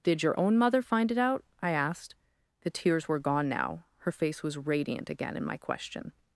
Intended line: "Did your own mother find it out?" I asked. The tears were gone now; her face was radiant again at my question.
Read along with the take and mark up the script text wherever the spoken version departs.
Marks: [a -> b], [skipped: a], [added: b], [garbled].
"Did your own mother find it out?" I asked. The tears were gone now; her face was radiant again [at -> in] my question.